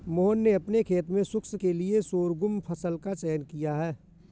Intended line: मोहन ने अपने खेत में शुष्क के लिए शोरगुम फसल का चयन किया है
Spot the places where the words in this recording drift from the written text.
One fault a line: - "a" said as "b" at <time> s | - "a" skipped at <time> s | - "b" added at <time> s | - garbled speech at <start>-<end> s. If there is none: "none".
none